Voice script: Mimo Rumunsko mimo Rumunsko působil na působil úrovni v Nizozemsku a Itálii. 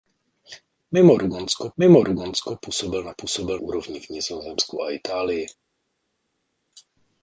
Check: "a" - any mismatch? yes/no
no